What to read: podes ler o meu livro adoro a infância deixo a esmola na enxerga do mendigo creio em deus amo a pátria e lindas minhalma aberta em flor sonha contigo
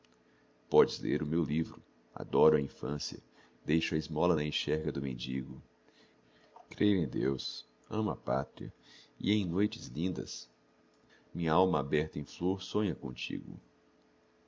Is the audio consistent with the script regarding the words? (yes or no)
no